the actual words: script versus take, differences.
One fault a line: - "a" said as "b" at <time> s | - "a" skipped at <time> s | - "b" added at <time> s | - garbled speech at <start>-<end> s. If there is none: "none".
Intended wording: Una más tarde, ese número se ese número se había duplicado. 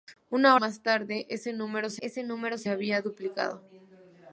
none